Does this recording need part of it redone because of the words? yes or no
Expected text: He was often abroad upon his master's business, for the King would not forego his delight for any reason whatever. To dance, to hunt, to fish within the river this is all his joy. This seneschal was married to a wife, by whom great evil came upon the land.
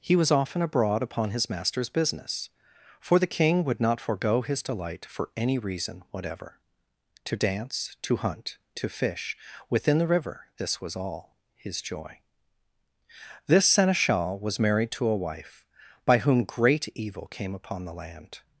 yes